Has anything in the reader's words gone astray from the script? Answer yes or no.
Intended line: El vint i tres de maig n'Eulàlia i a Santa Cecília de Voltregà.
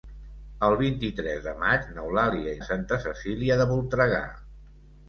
no